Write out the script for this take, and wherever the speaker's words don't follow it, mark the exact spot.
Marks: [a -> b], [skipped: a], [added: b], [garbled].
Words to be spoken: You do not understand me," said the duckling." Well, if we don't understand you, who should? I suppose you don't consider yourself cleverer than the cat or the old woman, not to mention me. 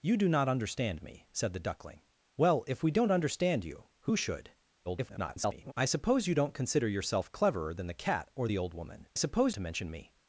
You do not understand me," said the duckling." Well, if we don't understand you, who should? [garbled] I suppose you don't consider yourself cleverer than the cat or the old woman, [not -> suppose] to mention me.